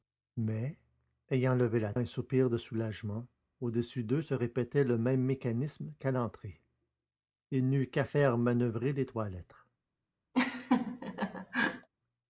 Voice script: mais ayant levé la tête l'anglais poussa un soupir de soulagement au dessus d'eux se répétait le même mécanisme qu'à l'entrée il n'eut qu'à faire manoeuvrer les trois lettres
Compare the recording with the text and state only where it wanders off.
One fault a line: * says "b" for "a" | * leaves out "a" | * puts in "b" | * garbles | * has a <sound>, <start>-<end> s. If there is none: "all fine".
* leaves out "tête l'anglais poussa"
* has a laugh, 10.3-11.9 s